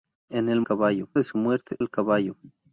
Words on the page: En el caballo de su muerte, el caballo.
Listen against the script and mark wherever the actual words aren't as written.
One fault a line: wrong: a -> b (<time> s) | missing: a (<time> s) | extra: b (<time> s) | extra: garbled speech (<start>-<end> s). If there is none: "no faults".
no faults